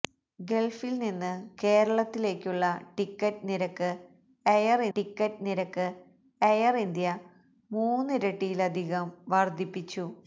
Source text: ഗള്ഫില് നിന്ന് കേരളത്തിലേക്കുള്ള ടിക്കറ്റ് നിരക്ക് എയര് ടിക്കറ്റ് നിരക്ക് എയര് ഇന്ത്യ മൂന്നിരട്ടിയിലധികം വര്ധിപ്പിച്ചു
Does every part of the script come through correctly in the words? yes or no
yes